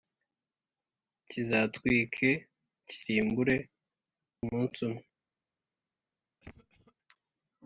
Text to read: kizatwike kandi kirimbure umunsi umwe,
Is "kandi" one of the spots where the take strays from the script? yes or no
yes